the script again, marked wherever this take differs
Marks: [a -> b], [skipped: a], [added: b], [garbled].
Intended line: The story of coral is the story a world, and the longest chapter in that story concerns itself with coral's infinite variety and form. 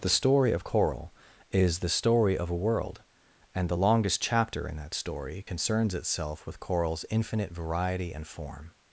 The story of coral is the story [added: of] a world, and the longest chapter in that story concerns itself with coral's infinite variety and form.